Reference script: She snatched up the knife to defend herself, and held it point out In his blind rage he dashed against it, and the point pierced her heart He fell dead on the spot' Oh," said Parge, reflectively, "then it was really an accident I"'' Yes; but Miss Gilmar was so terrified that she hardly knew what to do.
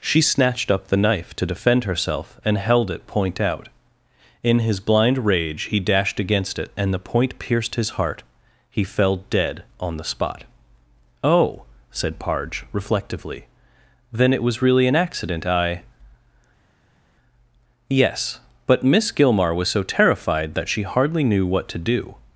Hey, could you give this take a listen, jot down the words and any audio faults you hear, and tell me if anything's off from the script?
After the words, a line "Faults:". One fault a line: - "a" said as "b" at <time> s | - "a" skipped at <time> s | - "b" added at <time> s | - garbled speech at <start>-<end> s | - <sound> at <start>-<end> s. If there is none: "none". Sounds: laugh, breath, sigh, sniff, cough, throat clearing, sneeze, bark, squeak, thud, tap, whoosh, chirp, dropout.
She snatched up the knife to defend herself, and held it point out In his blind rage he dashed against it, and the point pierced his heart He fell dead on the spot' Oh," said Parge, reflectively, "then it was really an accident I"'' Yes; but Miss Gilmar was so terrified that she hardly knew what to do.
Faults:
- "her" said as "his" at 7.7 s